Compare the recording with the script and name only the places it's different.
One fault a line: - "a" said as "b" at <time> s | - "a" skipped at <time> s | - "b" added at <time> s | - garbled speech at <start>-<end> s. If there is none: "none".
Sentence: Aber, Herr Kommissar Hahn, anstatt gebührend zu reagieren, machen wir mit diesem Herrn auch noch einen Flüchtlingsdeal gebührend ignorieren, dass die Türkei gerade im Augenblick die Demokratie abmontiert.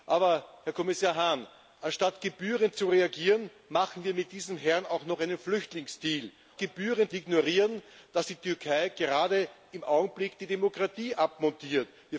none